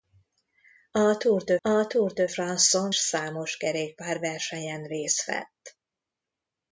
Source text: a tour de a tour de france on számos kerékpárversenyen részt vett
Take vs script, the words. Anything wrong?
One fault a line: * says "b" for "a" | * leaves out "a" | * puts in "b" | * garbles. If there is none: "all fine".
all fine